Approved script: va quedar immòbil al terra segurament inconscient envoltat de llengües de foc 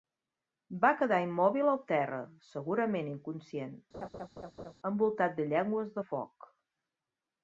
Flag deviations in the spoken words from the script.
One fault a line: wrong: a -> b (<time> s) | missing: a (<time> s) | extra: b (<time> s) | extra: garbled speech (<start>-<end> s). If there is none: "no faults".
no faults